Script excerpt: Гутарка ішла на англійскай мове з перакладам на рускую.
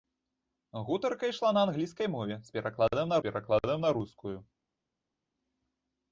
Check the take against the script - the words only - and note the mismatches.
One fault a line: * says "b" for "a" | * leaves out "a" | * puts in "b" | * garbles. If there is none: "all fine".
* puts in "перакладам на"